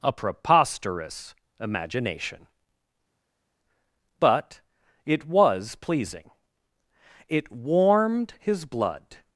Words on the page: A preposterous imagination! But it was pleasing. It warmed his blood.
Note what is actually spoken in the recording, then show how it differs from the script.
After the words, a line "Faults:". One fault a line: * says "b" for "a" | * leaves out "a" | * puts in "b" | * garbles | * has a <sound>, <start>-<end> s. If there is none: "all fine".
A preposterous imagination! But it was pleasing. It warmed his blood.
Faults:
all fine